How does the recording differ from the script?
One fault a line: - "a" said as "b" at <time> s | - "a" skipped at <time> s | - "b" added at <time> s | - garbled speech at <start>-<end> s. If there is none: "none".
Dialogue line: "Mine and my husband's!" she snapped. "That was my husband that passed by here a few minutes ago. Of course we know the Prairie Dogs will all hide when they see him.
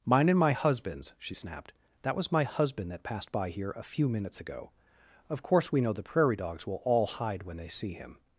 none